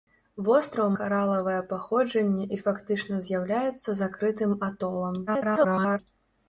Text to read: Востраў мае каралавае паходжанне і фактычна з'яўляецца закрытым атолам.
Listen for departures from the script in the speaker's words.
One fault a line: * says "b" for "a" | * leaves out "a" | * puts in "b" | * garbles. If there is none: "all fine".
* leaves out "мае"
* garbles